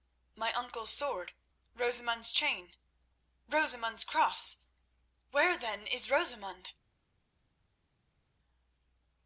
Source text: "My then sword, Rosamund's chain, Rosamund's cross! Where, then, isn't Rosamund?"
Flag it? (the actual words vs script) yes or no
yes